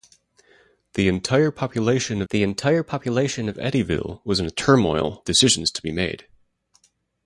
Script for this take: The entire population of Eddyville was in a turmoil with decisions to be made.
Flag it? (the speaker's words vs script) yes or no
yes